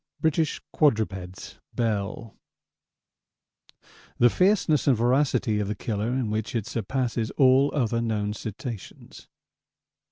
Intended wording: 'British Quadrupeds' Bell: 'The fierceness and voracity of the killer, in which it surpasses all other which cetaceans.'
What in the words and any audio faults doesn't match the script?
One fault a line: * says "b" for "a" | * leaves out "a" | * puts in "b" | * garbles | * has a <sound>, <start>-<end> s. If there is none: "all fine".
* says "known" for "which"